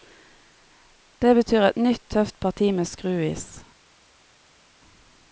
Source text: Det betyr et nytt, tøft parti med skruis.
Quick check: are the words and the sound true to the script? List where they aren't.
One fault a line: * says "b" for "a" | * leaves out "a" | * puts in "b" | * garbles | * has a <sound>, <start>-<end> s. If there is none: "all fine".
all fine